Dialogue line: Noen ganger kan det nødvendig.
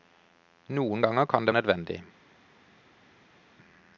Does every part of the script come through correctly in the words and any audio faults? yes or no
yes